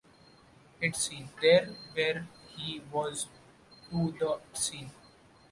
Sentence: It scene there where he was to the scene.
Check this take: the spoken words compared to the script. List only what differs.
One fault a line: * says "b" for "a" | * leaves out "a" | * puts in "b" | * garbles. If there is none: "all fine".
all fine